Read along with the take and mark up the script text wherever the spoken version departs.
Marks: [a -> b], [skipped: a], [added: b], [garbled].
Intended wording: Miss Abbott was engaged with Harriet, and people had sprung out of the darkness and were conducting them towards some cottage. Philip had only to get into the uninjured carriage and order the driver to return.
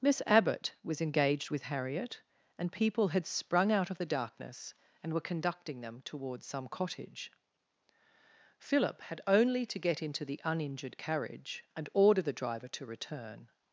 Miss Abbott was engaged with Harriet, and people had sprung out of the darkness and were conducting them towards some cottage. Philip had only to get into the uninjured carriage and order the driver to return.